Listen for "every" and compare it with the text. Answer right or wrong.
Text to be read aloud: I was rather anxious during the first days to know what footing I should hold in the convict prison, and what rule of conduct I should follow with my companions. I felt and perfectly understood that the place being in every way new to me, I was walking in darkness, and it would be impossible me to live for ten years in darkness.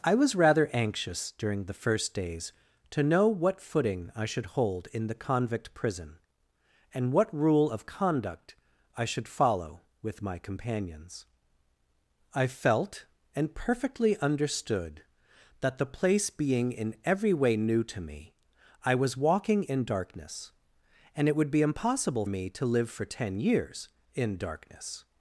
right